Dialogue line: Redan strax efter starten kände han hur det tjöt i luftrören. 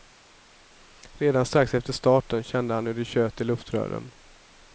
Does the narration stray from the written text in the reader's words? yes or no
no